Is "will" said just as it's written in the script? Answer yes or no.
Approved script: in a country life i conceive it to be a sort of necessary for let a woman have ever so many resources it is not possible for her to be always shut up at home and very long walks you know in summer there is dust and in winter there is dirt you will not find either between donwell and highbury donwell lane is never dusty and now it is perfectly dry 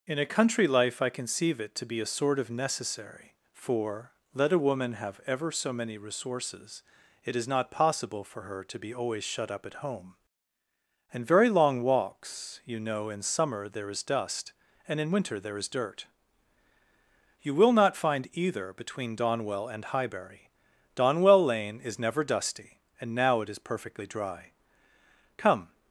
yes